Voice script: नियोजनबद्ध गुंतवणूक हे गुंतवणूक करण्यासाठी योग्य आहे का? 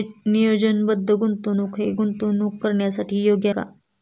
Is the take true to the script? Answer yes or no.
no